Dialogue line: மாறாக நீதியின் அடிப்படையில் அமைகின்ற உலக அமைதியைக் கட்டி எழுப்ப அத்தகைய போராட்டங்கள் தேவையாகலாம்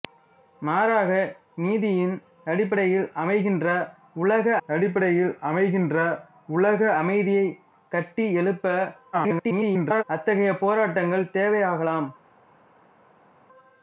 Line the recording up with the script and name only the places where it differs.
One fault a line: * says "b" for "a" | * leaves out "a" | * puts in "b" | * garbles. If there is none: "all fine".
* puts in "அடிப்படையில் அமைகின்ற உலக"
* garbles